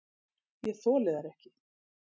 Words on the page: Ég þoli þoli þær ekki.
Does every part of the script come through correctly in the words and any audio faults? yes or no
no